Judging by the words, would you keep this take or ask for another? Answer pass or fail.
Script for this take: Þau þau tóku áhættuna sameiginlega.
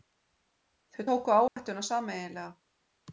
fail